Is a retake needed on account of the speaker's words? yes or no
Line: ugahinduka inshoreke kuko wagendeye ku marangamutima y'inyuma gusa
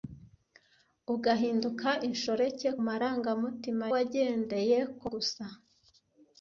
yes